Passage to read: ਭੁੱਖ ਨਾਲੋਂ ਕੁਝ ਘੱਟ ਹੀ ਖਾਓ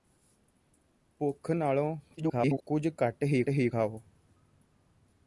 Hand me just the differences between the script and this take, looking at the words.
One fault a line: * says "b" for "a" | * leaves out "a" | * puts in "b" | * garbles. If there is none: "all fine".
* garbles
* puts in "ਹੀ"